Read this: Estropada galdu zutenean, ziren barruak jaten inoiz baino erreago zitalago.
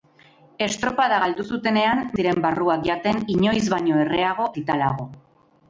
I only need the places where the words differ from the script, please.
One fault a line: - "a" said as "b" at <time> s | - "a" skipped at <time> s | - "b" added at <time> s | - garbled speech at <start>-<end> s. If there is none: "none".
none